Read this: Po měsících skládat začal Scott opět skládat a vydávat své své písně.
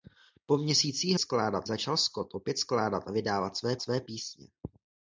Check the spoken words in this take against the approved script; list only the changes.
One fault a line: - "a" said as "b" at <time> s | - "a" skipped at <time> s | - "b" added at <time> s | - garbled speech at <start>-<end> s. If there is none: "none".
none